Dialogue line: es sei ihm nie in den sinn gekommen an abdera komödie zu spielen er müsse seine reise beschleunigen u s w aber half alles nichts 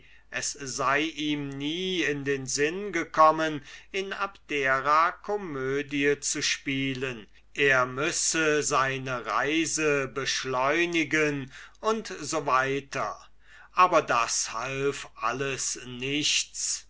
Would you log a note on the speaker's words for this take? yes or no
yes